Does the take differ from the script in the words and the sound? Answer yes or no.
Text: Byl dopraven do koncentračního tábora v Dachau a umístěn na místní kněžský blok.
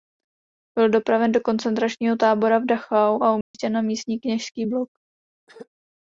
yes